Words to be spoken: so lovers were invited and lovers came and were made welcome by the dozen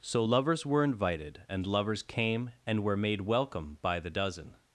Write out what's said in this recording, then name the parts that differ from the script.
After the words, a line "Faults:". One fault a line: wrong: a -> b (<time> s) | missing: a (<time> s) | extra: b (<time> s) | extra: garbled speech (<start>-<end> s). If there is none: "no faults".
so lovers were invited and lovers came and were made welcome by the dozen
Faults:
no faults